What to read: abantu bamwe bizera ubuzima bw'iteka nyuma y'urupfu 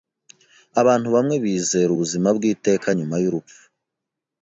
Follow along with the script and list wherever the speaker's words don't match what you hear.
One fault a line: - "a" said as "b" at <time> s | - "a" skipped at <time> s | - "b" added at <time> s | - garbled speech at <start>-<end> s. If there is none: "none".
none